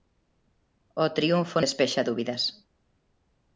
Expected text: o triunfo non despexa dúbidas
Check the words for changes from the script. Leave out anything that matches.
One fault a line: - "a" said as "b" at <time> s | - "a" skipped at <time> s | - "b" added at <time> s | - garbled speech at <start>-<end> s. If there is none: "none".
- "non" skipped at 1.6 s